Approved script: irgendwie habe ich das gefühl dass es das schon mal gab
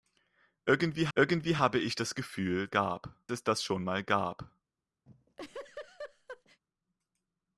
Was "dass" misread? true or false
true